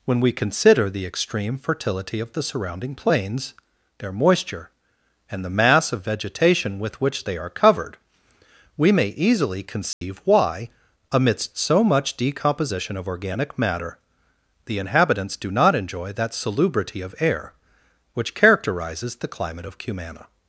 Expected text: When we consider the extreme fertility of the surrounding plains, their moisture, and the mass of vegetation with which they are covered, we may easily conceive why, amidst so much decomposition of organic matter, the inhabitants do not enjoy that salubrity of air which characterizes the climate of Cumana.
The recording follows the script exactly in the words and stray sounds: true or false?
false